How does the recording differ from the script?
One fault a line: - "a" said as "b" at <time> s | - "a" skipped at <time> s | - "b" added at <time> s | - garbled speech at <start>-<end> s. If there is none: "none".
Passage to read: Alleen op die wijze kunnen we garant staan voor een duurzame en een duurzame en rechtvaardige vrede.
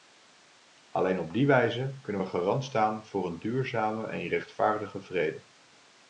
- "een duurzame en" skipped at 4.3 s